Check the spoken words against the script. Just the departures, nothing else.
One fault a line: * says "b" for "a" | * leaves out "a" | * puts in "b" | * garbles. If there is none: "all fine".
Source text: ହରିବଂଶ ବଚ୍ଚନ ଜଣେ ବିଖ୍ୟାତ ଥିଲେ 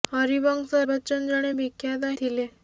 all fine